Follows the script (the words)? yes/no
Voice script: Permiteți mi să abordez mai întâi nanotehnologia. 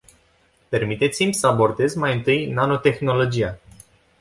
yes